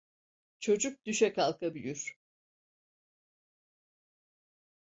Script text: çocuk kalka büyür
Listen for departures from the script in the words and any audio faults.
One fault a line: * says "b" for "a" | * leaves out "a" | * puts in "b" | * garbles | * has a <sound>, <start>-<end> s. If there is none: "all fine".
* puts in "düşe"